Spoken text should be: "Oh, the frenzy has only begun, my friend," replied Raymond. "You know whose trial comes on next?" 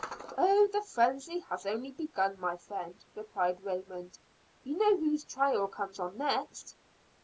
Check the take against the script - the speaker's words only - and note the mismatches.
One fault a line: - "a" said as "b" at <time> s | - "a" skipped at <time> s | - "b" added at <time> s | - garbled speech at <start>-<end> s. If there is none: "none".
none